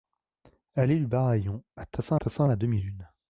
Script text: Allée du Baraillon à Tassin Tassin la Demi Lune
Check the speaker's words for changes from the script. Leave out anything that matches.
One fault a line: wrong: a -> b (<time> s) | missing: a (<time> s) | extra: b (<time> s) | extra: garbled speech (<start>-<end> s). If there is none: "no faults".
no faults